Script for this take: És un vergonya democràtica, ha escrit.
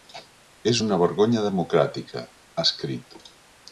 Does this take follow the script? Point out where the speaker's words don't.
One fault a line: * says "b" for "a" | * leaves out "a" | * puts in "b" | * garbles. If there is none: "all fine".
* says "una" for "un"